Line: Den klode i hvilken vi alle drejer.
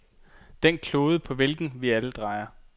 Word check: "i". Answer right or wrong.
wrong